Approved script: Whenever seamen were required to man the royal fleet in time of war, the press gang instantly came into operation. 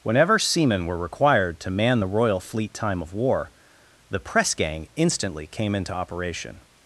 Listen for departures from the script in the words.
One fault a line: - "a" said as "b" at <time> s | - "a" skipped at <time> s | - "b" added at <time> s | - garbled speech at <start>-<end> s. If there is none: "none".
- "in" skipped at 2.7 s